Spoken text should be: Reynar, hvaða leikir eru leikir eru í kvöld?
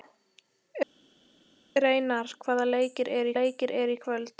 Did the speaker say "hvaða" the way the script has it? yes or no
yes